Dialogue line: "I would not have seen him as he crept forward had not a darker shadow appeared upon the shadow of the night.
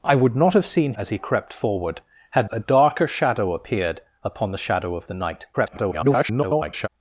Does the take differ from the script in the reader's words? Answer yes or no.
yes